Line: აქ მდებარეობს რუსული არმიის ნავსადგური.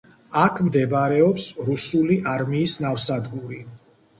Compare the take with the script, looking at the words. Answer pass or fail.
pass